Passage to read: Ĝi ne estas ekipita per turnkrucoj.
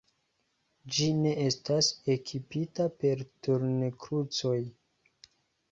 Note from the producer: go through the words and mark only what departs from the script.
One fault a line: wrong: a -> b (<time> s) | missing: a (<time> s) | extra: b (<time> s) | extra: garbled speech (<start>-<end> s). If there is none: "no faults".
no faults